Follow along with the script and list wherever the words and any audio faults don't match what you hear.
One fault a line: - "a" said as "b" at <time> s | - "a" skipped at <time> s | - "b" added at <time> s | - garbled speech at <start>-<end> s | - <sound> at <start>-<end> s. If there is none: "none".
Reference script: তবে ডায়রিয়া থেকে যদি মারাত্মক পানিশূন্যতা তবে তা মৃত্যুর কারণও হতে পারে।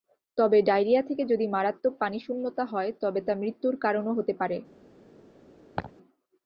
- "হয়" added at 2.6 s
- laugh at 5.8-5.9 s